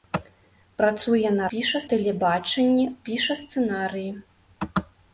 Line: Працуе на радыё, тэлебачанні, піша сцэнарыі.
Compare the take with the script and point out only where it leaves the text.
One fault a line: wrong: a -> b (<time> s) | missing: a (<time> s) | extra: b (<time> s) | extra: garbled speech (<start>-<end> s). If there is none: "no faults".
wrong: радыё -> піша (1.5 s)